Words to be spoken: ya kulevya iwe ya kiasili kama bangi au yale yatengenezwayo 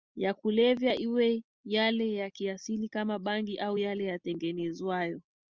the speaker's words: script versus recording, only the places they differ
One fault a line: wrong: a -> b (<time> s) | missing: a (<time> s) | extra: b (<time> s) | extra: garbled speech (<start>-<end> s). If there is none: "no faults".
extra: yale (1.6 s)